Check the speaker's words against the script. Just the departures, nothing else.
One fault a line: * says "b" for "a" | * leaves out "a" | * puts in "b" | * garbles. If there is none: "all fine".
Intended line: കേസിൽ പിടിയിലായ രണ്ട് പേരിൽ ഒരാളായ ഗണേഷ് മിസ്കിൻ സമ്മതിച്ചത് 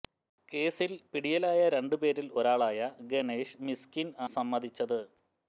all fine